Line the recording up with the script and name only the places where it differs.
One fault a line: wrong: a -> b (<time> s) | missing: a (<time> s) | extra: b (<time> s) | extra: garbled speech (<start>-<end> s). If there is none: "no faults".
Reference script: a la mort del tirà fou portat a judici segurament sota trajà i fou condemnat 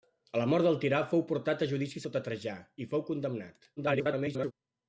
missing: segurament (2.0 s)
extra: garbled speech (3.8-4.5 s)